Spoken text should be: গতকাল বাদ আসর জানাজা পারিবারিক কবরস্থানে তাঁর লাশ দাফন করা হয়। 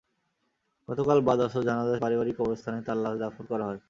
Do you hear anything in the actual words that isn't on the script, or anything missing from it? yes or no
no